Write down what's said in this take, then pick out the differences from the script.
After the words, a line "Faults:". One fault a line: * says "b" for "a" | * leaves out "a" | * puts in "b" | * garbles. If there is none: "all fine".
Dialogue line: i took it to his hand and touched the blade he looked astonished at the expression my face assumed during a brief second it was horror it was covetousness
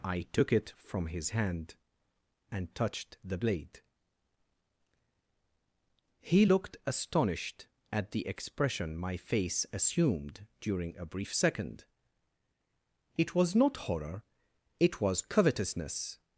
i took it from his hand and touched the blade he looked astonished at the expression my face assumed during a brief second it was not horror it was covetousness
Faults:
* says "from" for "to"
* puts in "not"